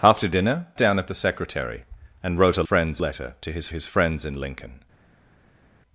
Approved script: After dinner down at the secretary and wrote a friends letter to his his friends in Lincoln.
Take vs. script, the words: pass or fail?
pass